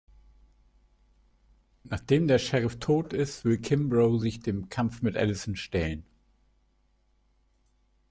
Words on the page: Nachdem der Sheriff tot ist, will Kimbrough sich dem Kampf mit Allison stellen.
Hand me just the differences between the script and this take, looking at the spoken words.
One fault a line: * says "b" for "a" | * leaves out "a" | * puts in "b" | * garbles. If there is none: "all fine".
all fine